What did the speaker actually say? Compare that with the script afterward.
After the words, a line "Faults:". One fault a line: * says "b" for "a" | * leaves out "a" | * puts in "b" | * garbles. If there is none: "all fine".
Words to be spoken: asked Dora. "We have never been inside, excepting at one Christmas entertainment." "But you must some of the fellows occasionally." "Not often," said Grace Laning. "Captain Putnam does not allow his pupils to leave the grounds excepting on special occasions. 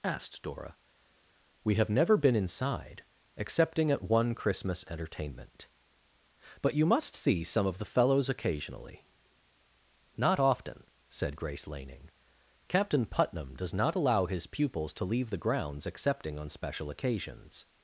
asked Dora. "We have never been inside, excepting at one Christmas entertainment." "But you must see some of the fellows occasionally." "Not often," said Grace Laning. "Captain Putnam does not allow his pupils to leave the grounds excepting on special occasions.
Faults:
* puts in "see"